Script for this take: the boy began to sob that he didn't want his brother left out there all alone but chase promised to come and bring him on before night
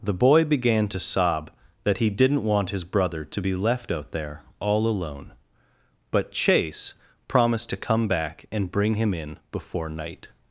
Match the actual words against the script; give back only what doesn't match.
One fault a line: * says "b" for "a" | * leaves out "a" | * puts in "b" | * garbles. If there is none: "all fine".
* puts in "to be"
* puts in "back"
* says "in" for "on"